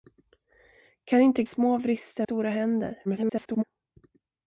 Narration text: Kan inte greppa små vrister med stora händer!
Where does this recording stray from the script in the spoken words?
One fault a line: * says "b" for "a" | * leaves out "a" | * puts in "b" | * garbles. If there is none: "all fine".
* leaves out "greppa"
* leaves out "med"
* garbles